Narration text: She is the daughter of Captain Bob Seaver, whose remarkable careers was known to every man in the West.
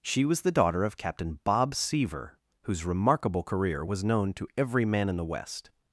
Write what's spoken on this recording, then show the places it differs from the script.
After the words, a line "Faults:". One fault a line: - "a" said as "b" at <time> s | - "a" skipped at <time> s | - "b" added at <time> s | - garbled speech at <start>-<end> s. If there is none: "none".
She was the daughter of Captain Bob Seaver, whose remarkable career was known to every man in the West.
Faults:
- "is" said as "was" at 0.2 s
- "careers" said as "career" at 3.4 s